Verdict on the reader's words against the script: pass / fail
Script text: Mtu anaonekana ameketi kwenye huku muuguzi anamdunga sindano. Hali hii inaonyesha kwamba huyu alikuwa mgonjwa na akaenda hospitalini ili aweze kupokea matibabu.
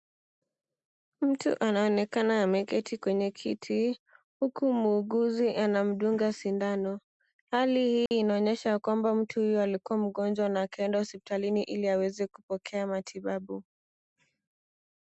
fail